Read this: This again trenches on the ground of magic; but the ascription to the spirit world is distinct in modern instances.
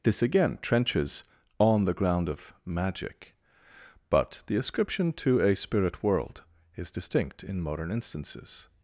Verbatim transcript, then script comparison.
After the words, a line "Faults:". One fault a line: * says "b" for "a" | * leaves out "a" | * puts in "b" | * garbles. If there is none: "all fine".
This again trenches on the ground of magic; but the ascription to a spirit world is distinct in modern instances.
Faults:
* says "a" for "the"